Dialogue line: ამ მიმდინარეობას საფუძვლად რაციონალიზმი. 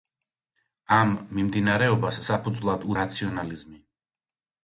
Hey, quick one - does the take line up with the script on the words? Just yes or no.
yes